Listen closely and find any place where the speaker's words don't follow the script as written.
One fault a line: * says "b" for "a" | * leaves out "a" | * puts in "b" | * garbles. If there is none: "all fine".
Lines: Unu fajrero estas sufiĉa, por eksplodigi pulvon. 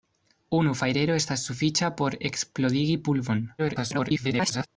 * garbles